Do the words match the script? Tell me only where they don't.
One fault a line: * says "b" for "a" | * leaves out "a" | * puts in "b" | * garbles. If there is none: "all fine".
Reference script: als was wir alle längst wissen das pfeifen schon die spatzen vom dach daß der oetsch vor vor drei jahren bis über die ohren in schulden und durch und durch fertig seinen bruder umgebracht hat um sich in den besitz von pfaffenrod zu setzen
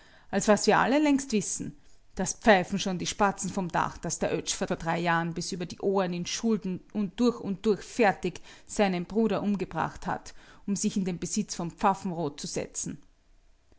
all fine